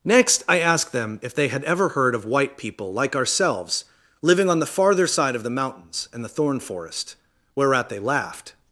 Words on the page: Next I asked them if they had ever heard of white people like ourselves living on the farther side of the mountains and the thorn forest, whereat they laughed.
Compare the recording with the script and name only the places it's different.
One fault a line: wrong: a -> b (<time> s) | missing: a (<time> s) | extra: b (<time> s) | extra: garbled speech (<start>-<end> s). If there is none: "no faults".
no faults